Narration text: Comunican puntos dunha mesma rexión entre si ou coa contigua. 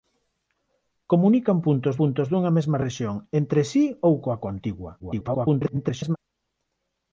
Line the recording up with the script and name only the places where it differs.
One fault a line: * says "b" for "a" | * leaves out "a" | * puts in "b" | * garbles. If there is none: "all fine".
* puts in "puntos"
* garbles